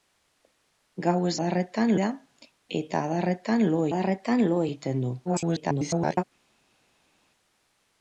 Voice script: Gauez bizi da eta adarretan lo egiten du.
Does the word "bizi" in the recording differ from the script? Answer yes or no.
yes